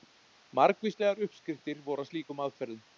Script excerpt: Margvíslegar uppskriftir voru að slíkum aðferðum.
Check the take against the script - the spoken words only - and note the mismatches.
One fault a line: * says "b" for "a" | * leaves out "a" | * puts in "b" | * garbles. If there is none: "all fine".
all fine